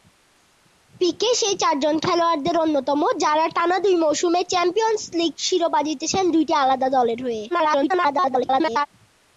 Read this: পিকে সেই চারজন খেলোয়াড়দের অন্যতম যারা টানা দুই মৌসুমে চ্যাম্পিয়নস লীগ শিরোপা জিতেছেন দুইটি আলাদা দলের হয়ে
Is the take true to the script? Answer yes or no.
no